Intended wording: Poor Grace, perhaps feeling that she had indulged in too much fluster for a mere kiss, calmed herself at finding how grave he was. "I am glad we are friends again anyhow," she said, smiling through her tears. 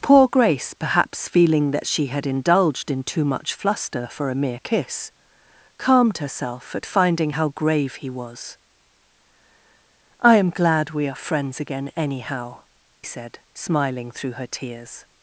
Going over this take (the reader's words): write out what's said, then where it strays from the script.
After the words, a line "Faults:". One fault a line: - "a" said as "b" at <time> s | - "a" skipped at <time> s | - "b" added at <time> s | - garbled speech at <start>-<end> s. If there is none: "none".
Poor Grace, perhaps feeling that she had indulged in too much fluster for a mere kiss, calmed herself at finding how grave he was. "I am glad we are friends again anyhow," said, smiling through her tears.
Faults:
- "she" skipped at 12.6 s